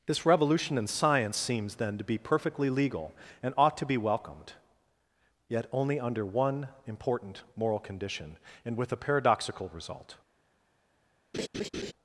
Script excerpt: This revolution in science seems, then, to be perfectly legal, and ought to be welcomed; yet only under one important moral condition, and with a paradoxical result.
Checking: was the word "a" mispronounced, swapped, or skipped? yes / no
no